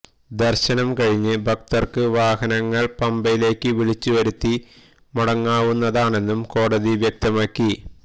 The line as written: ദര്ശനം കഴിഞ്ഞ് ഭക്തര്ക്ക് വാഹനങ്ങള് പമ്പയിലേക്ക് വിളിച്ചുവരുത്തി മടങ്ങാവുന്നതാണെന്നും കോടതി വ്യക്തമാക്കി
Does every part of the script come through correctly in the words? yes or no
yes